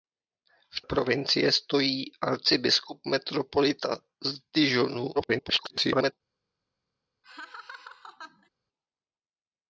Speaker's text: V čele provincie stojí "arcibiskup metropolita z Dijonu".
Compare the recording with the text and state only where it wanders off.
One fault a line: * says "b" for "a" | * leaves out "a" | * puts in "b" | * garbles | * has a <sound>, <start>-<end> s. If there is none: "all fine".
* leaves out "čele"
* garbles
* has a laugh, 7.2-8.5 s